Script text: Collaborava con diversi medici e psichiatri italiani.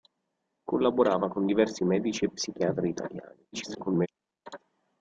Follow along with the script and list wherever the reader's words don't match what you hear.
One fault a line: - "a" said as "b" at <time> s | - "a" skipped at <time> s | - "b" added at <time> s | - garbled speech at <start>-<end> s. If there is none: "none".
- garbled speech at 3.5-4.1 s